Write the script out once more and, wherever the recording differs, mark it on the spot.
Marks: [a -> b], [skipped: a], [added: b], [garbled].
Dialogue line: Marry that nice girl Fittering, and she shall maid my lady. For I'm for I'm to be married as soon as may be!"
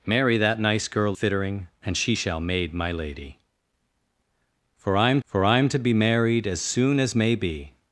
Marry that nice girl Fittering, and she shall maid my lady. For I'm for I'm to be married as soon as may be!"